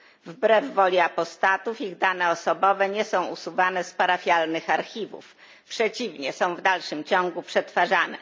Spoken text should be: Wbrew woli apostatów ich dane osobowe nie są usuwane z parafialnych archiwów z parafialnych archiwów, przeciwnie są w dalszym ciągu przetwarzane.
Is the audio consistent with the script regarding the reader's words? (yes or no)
no